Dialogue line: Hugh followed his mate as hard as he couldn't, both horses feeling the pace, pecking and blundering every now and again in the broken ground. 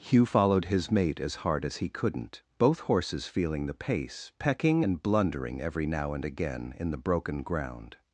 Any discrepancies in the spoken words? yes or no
no